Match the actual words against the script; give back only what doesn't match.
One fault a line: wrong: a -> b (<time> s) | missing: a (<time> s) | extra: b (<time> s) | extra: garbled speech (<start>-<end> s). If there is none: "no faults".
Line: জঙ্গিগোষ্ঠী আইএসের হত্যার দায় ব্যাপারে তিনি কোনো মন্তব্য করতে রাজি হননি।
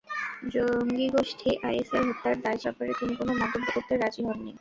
no faults